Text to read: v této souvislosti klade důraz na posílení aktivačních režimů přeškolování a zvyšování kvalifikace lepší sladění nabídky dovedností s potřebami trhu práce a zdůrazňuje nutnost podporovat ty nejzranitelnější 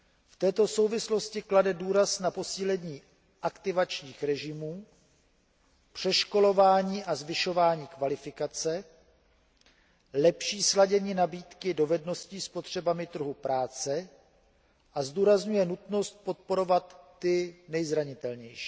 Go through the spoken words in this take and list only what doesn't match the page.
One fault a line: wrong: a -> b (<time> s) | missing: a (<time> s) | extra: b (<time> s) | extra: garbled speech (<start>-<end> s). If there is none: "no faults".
no faults